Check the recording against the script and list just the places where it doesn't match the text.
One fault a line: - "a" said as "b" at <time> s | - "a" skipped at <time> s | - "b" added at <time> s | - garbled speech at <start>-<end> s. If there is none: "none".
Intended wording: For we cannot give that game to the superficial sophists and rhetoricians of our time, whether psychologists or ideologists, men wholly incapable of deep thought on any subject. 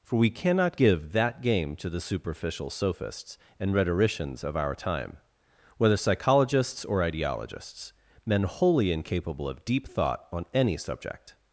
none